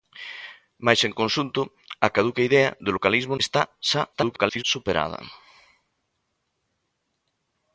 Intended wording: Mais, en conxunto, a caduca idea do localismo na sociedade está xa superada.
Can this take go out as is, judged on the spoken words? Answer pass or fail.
fail